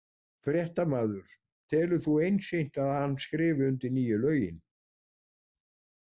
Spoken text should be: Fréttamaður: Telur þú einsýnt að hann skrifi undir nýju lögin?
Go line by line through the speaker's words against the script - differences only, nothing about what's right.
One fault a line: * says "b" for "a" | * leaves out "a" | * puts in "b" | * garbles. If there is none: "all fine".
all fine